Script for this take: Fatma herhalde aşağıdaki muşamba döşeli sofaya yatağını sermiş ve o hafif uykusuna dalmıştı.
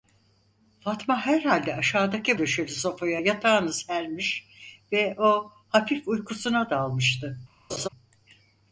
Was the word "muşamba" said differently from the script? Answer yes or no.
yes